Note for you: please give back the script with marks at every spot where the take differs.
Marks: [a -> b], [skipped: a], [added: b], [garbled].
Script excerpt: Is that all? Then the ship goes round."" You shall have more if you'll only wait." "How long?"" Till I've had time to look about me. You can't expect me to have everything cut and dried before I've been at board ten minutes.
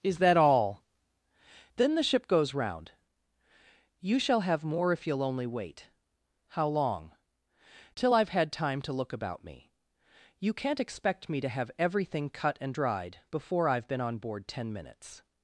Is that all? Then the ship goes round."" You shall have more if you'll only wait." "How long?"" Till I've had time to look about me. You can't expect me to have everything cut and dried before I've been [at -> on] board ten minutes.